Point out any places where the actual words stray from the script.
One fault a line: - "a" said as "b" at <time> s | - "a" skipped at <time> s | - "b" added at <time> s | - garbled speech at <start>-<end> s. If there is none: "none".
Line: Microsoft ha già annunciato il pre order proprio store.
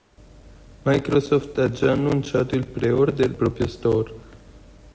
none